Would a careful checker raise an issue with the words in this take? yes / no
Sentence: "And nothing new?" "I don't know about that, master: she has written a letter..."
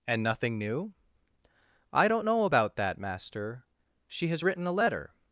no